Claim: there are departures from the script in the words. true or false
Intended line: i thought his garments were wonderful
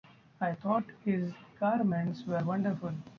false